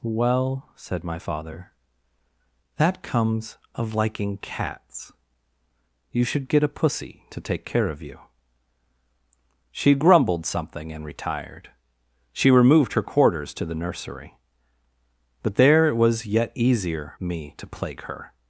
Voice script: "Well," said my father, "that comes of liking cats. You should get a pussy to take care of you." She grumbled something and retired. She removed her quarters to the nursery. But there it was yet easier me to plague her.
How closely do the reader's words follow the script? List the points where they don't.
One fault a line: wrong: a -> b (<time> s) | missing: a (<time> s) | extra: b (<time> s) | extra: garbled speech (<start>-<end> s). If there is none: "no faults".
no faults